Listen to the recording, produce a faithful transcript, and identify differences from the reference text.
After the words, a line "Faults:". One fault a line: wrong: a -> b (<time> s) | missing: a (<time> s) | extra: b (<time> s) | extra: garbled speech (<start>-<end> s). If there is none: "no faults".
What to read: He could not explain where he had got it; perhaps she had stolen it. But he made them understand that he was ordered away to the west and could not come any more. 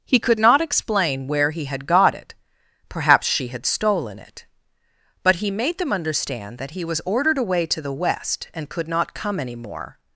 He could not explain where he had got it; perhaps she had stolen it. But he made them understand that he was ordered away to the west and could not come any more.
Faults:
no faults